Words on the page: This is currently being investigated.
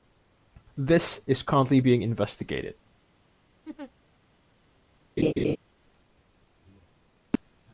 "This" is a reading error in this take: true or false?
false